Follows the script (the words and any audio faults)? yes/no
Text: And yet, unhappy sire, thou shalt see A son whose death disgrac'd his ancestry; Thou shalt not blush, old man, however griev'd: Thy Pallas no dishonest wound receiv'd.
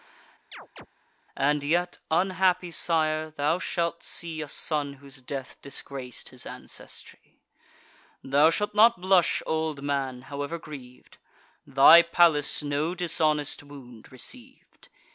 no